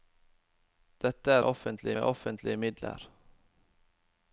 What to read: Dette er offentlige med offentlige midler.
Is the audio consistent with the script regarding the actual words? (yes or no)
yes